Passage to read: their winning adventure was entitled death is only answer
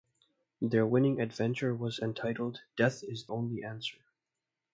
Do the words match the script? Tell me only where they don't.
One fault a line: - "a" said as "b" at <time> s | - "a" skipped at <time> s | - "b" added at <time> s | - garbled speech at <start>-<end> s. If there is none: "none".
none